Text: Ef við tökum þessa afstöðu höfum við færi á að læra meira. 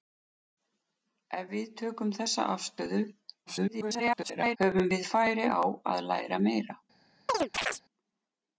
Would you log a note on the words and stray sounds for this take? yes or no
yes